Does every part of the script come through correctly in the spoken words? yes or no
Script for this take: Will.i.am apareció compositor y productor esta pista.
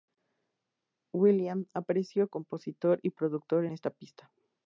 yes